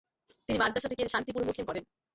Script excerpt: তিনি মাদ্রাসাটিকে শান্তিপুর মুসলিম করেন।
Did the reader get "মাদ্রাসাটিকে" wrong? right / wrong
right